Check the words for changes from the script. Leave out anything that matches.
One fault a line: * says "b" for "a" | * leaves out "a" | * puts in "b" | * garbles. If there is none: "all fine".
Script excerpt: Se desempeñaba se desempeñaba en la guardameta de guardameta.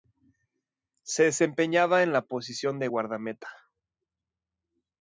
* leaves out "se desempeñaba"
* says "posición" for "guardameta"